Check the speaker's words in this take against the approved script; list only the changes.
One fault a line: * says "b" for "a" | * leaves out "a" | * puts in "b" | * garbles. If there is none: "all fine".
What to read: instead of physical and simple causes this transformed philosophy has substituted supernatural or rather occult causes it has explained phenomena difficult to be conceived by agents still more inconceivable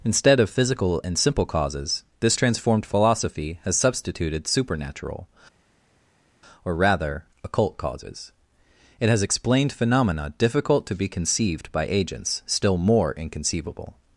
all fine